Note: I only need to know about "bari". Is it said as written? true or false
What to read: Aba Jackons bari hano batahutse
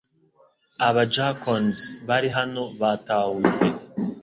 true